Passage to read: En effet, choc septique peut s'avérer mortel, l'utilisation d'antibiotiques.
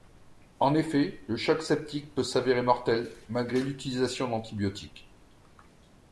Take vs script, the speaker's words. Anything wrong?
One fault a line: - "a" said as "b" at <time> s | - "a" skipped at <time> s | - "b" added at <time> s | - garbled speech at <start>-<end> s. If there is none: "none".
- "le" added at 1.3 s
- "malgré" added at 3.3 s